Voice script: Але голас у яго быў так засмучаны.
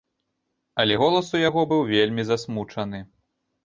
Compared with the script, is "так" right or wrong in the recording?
wrong